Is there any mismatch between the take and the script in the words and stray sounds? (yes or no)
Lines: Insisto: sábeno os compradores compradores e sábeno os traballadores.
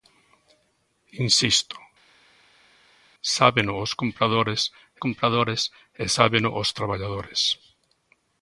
no